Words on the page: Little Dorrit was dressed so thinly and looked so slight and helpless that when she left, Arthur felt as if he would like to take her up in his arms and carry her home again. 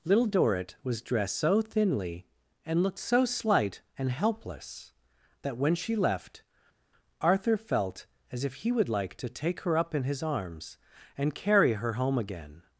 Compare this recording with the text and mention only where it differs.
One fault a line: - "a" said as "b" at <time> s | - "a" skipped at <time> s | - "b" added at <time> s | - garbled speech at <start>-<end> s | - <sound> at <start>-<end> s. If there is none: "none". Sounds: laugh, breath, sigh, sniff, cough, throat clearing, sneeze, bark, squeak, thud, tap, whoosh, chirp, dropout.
none